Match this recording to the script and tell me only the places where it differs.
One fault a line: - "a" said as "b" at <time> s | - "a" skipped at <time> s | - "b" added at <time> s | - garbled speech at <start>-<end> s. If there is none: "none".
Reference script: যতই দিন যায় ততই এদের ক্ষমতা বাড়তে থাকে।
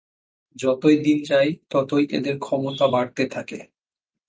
none